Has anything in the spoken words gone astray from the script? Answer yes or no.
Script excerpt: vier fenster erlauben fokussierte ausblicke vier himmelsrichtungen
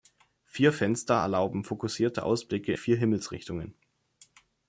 no